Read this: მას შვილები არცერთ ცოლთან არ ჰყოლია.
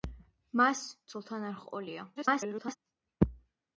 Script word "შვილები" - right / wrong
wrong